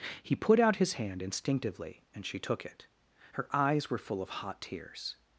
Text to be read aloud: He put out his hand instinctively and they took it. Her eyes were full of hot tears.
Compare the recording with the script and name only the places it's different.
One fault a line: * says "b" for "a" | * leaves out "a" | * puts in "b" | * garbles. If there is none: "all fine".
* says "she" for "they"